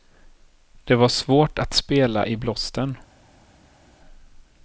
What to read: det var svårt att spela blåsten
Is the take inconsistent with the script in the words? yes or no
yes